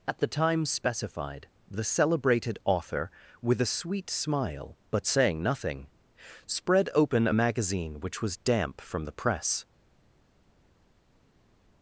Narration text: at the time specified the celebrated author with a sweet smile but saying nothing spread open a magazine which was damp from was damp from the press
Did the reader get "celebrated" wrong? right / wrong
right